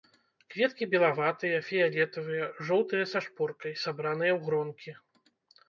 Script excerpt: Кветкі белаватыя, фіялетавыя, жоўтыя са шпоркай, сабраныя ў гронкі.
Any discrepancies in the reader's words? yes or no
no